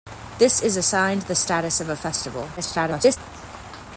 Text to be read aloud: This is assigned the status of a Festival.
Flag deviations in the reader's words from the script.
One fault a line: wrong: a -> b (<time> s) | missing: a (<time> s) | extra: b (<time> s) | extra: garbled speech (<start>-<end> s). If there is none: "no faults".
extra: garbled speech (2.6-3.2 s)